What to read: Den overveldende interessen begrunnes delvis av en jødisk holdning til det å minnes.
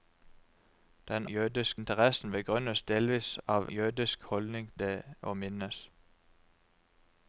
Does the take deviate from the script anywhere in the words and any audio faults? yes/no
yes